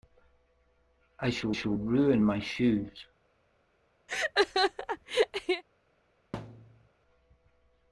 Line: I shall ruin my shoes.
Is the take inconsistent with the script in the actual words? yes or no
yes